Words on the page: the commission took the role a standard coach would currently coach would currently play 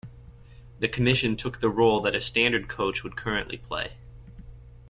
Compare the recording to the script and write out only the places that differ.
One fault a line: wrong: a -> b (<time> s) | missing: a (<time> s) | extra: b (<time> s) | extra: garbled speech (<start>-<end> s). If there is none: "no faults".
extra: that (2.0 s)
missing: coach would currently (3.6 s)